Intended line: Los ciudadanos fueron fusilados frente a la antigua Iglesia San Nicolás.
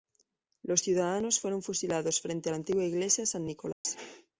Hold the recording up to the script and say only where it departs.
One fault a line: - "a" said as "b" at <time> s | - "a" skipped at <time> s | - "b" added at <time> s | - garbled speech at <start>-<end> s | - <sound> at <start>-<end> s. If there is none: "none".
- dropout at 3.7-3.8 s